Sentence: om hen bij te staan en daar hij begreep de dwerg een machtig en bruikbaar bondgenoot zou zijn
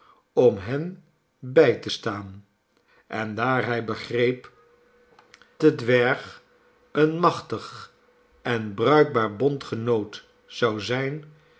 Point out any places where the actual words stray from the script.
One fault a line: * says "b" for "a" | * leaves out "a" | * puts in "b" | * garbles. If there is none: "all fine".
all fine